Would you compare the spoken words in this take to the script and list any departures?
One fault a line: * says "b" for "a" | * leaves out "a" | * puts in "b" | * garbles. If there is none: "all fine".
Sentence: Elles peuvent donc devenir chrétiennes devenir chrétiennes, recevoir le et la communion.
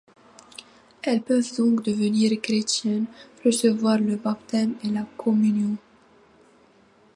* leaves out "devenir chrétiennes"
* puts in "baptême"